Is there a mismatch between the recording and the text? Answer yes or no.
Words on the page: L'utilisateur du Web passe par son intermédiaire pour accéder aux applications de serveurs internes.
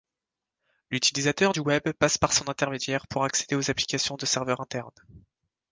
no